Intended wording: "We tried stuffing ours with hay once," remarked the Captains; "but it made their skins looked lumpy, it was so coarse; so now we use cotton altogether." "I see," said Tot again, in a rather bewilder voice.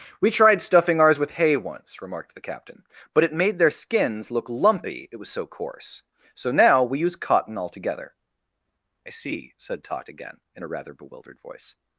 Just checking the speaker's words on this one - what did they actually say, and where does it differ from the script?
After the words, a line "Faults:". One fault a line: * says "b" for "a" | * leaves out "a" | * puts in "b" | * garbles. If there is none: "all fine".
"We tried stuffing ours with hay once," remarked the Captain; "but it made their skins look lumpy, it was so coarse; so now we use cotton altogether." "I see," said Tot again, in a rather bewildered voice.
Faults:
* says "Captain" for "Captains"
* says "look" for "looked"
* says "bewildered" for "bewilder"